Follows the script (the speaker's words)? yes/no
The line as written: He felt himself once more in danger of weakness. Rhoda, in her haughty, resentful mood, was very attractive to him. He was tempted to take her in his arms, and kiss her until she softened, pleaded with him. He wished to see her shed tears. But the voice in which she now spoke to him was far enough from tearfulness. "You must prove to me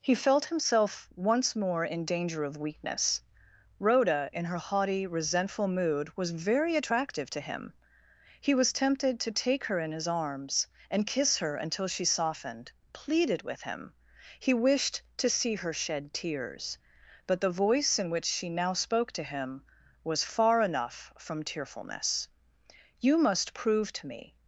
yes